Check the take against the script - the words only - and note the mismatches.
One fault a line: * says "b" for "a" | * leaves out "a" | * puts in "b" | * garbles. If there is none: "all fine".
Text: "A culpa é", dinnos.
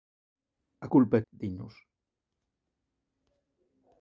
all fine